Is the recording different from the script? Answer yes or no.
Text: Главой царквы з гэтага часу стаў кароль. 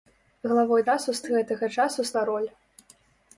yes